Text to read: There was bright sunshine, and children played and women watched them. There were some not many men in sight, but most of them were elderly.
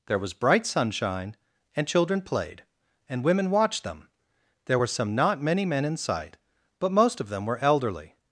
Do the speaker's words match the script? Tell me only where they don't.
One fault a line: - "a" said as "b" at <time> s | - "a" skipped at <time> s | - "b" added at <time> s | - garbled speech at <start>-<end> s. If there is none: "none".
none